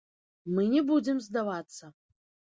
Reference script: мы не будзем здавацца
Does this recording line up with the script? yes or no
yes